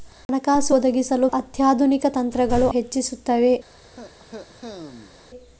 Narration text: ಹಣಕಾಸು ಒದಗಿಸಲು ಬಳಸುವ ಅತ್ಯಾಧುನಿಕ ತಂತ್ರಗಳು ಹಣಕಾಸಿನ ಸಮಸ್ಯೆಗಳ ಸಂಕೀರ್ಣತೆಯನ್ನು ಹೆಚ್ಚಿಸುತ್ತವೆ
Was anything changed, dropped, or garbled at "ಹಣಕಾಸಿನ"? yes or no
yes